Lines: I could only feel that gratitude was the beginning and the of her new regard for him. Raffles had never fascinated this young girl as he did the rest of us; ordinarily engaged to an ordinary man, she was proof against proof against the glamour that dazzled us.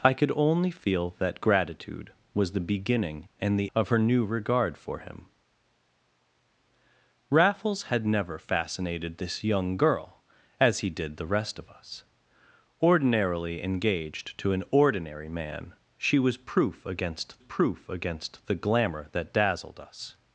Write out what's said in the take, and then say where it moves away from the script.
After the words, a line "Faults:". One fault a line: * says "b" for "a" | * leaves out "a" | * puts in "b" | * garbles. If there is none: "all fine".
I could only feel that gratitude was the beginning and the of her new regard for him. Raffles had never fascinated this young girl as he did the rest of us; ordinarily engaged to an ordinary man, she was proof against proof against the glamour that dazzled us.
Faults:
all fine